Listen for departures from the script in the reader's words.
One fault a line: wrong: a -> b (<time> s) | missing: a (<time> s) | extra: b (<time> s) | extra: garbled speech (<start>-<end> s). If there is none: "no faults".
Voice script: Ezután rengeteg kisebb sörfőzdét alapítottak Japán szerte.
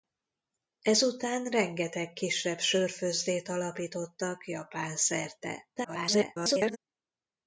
extra: garbled speech (5.8-6.8 s)